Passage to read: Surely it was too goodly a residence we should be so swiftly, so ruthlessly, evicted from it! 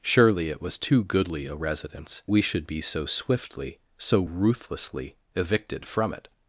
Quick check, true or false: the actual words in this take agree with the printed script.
true